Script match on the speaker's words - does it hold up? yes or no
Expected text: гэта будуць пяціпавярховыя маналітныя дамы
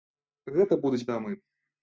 no